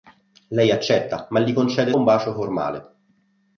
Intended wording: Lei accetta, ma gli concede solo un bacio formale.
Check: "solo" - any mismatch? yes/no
yes